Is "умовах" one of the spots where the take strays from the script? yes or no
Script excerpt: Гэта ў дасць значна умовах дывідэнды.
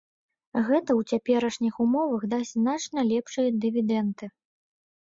yes